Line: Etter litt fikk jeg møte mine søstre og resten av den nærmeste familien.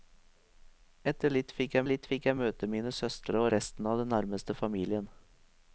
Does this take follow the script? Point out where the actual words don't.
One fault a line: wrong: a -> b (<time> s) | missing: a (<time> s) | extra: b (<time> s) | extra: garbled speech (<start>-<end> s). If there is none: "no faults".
extra: litt fikk jeg (1.9 s)